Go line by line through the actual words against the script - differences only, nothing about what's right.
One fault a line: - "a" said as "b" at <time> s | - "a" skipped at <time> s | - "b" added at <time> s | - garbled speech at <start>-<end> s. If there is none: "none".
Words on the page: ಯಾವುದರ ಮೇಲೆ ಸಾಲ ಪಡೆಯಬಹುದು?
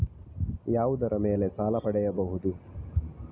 none